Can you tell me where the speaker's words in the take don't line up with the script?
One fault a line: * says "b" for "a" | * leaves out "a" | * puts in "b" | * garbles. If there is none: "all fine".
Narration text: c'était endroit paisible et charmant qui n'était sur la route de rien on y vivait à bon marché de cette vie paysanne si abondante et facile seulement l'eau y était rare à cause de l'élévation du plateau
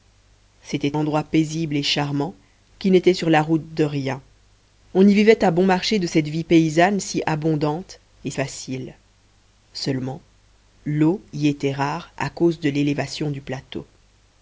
all fine